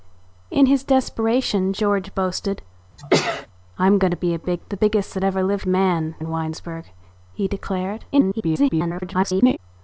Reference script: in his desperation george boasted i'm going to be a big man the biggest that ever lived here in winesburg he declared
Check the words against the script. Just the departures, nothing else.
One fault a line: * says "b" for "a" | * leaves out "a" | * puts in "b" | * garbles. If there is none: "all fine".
* leaves out "man"
* says "man" for "here"
* garbles